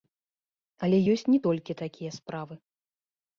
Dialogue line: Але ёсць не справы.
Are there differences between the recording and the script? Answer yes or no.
yes